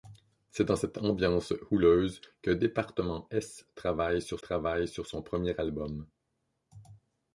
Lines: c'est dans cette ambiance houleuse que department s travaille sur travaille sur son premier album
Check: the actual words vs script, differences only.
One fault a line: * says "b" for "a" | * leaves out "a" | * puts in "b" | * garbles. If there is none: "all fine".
all fine